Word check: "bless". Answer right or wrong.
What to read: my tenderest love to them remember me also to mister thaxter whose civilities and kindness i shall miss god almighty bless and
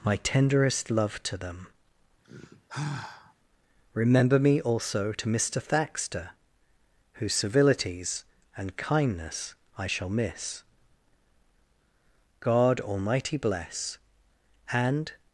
right